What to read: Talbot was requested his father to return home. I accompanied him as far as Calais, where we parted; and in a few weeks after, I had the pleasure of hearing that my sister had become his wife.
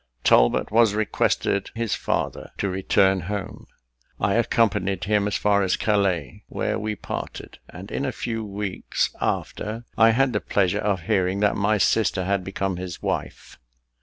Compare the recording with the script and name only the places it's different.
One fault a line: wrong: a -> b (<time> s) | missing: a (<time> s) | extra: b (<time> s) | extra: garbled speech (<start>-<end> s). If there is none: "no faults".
no faults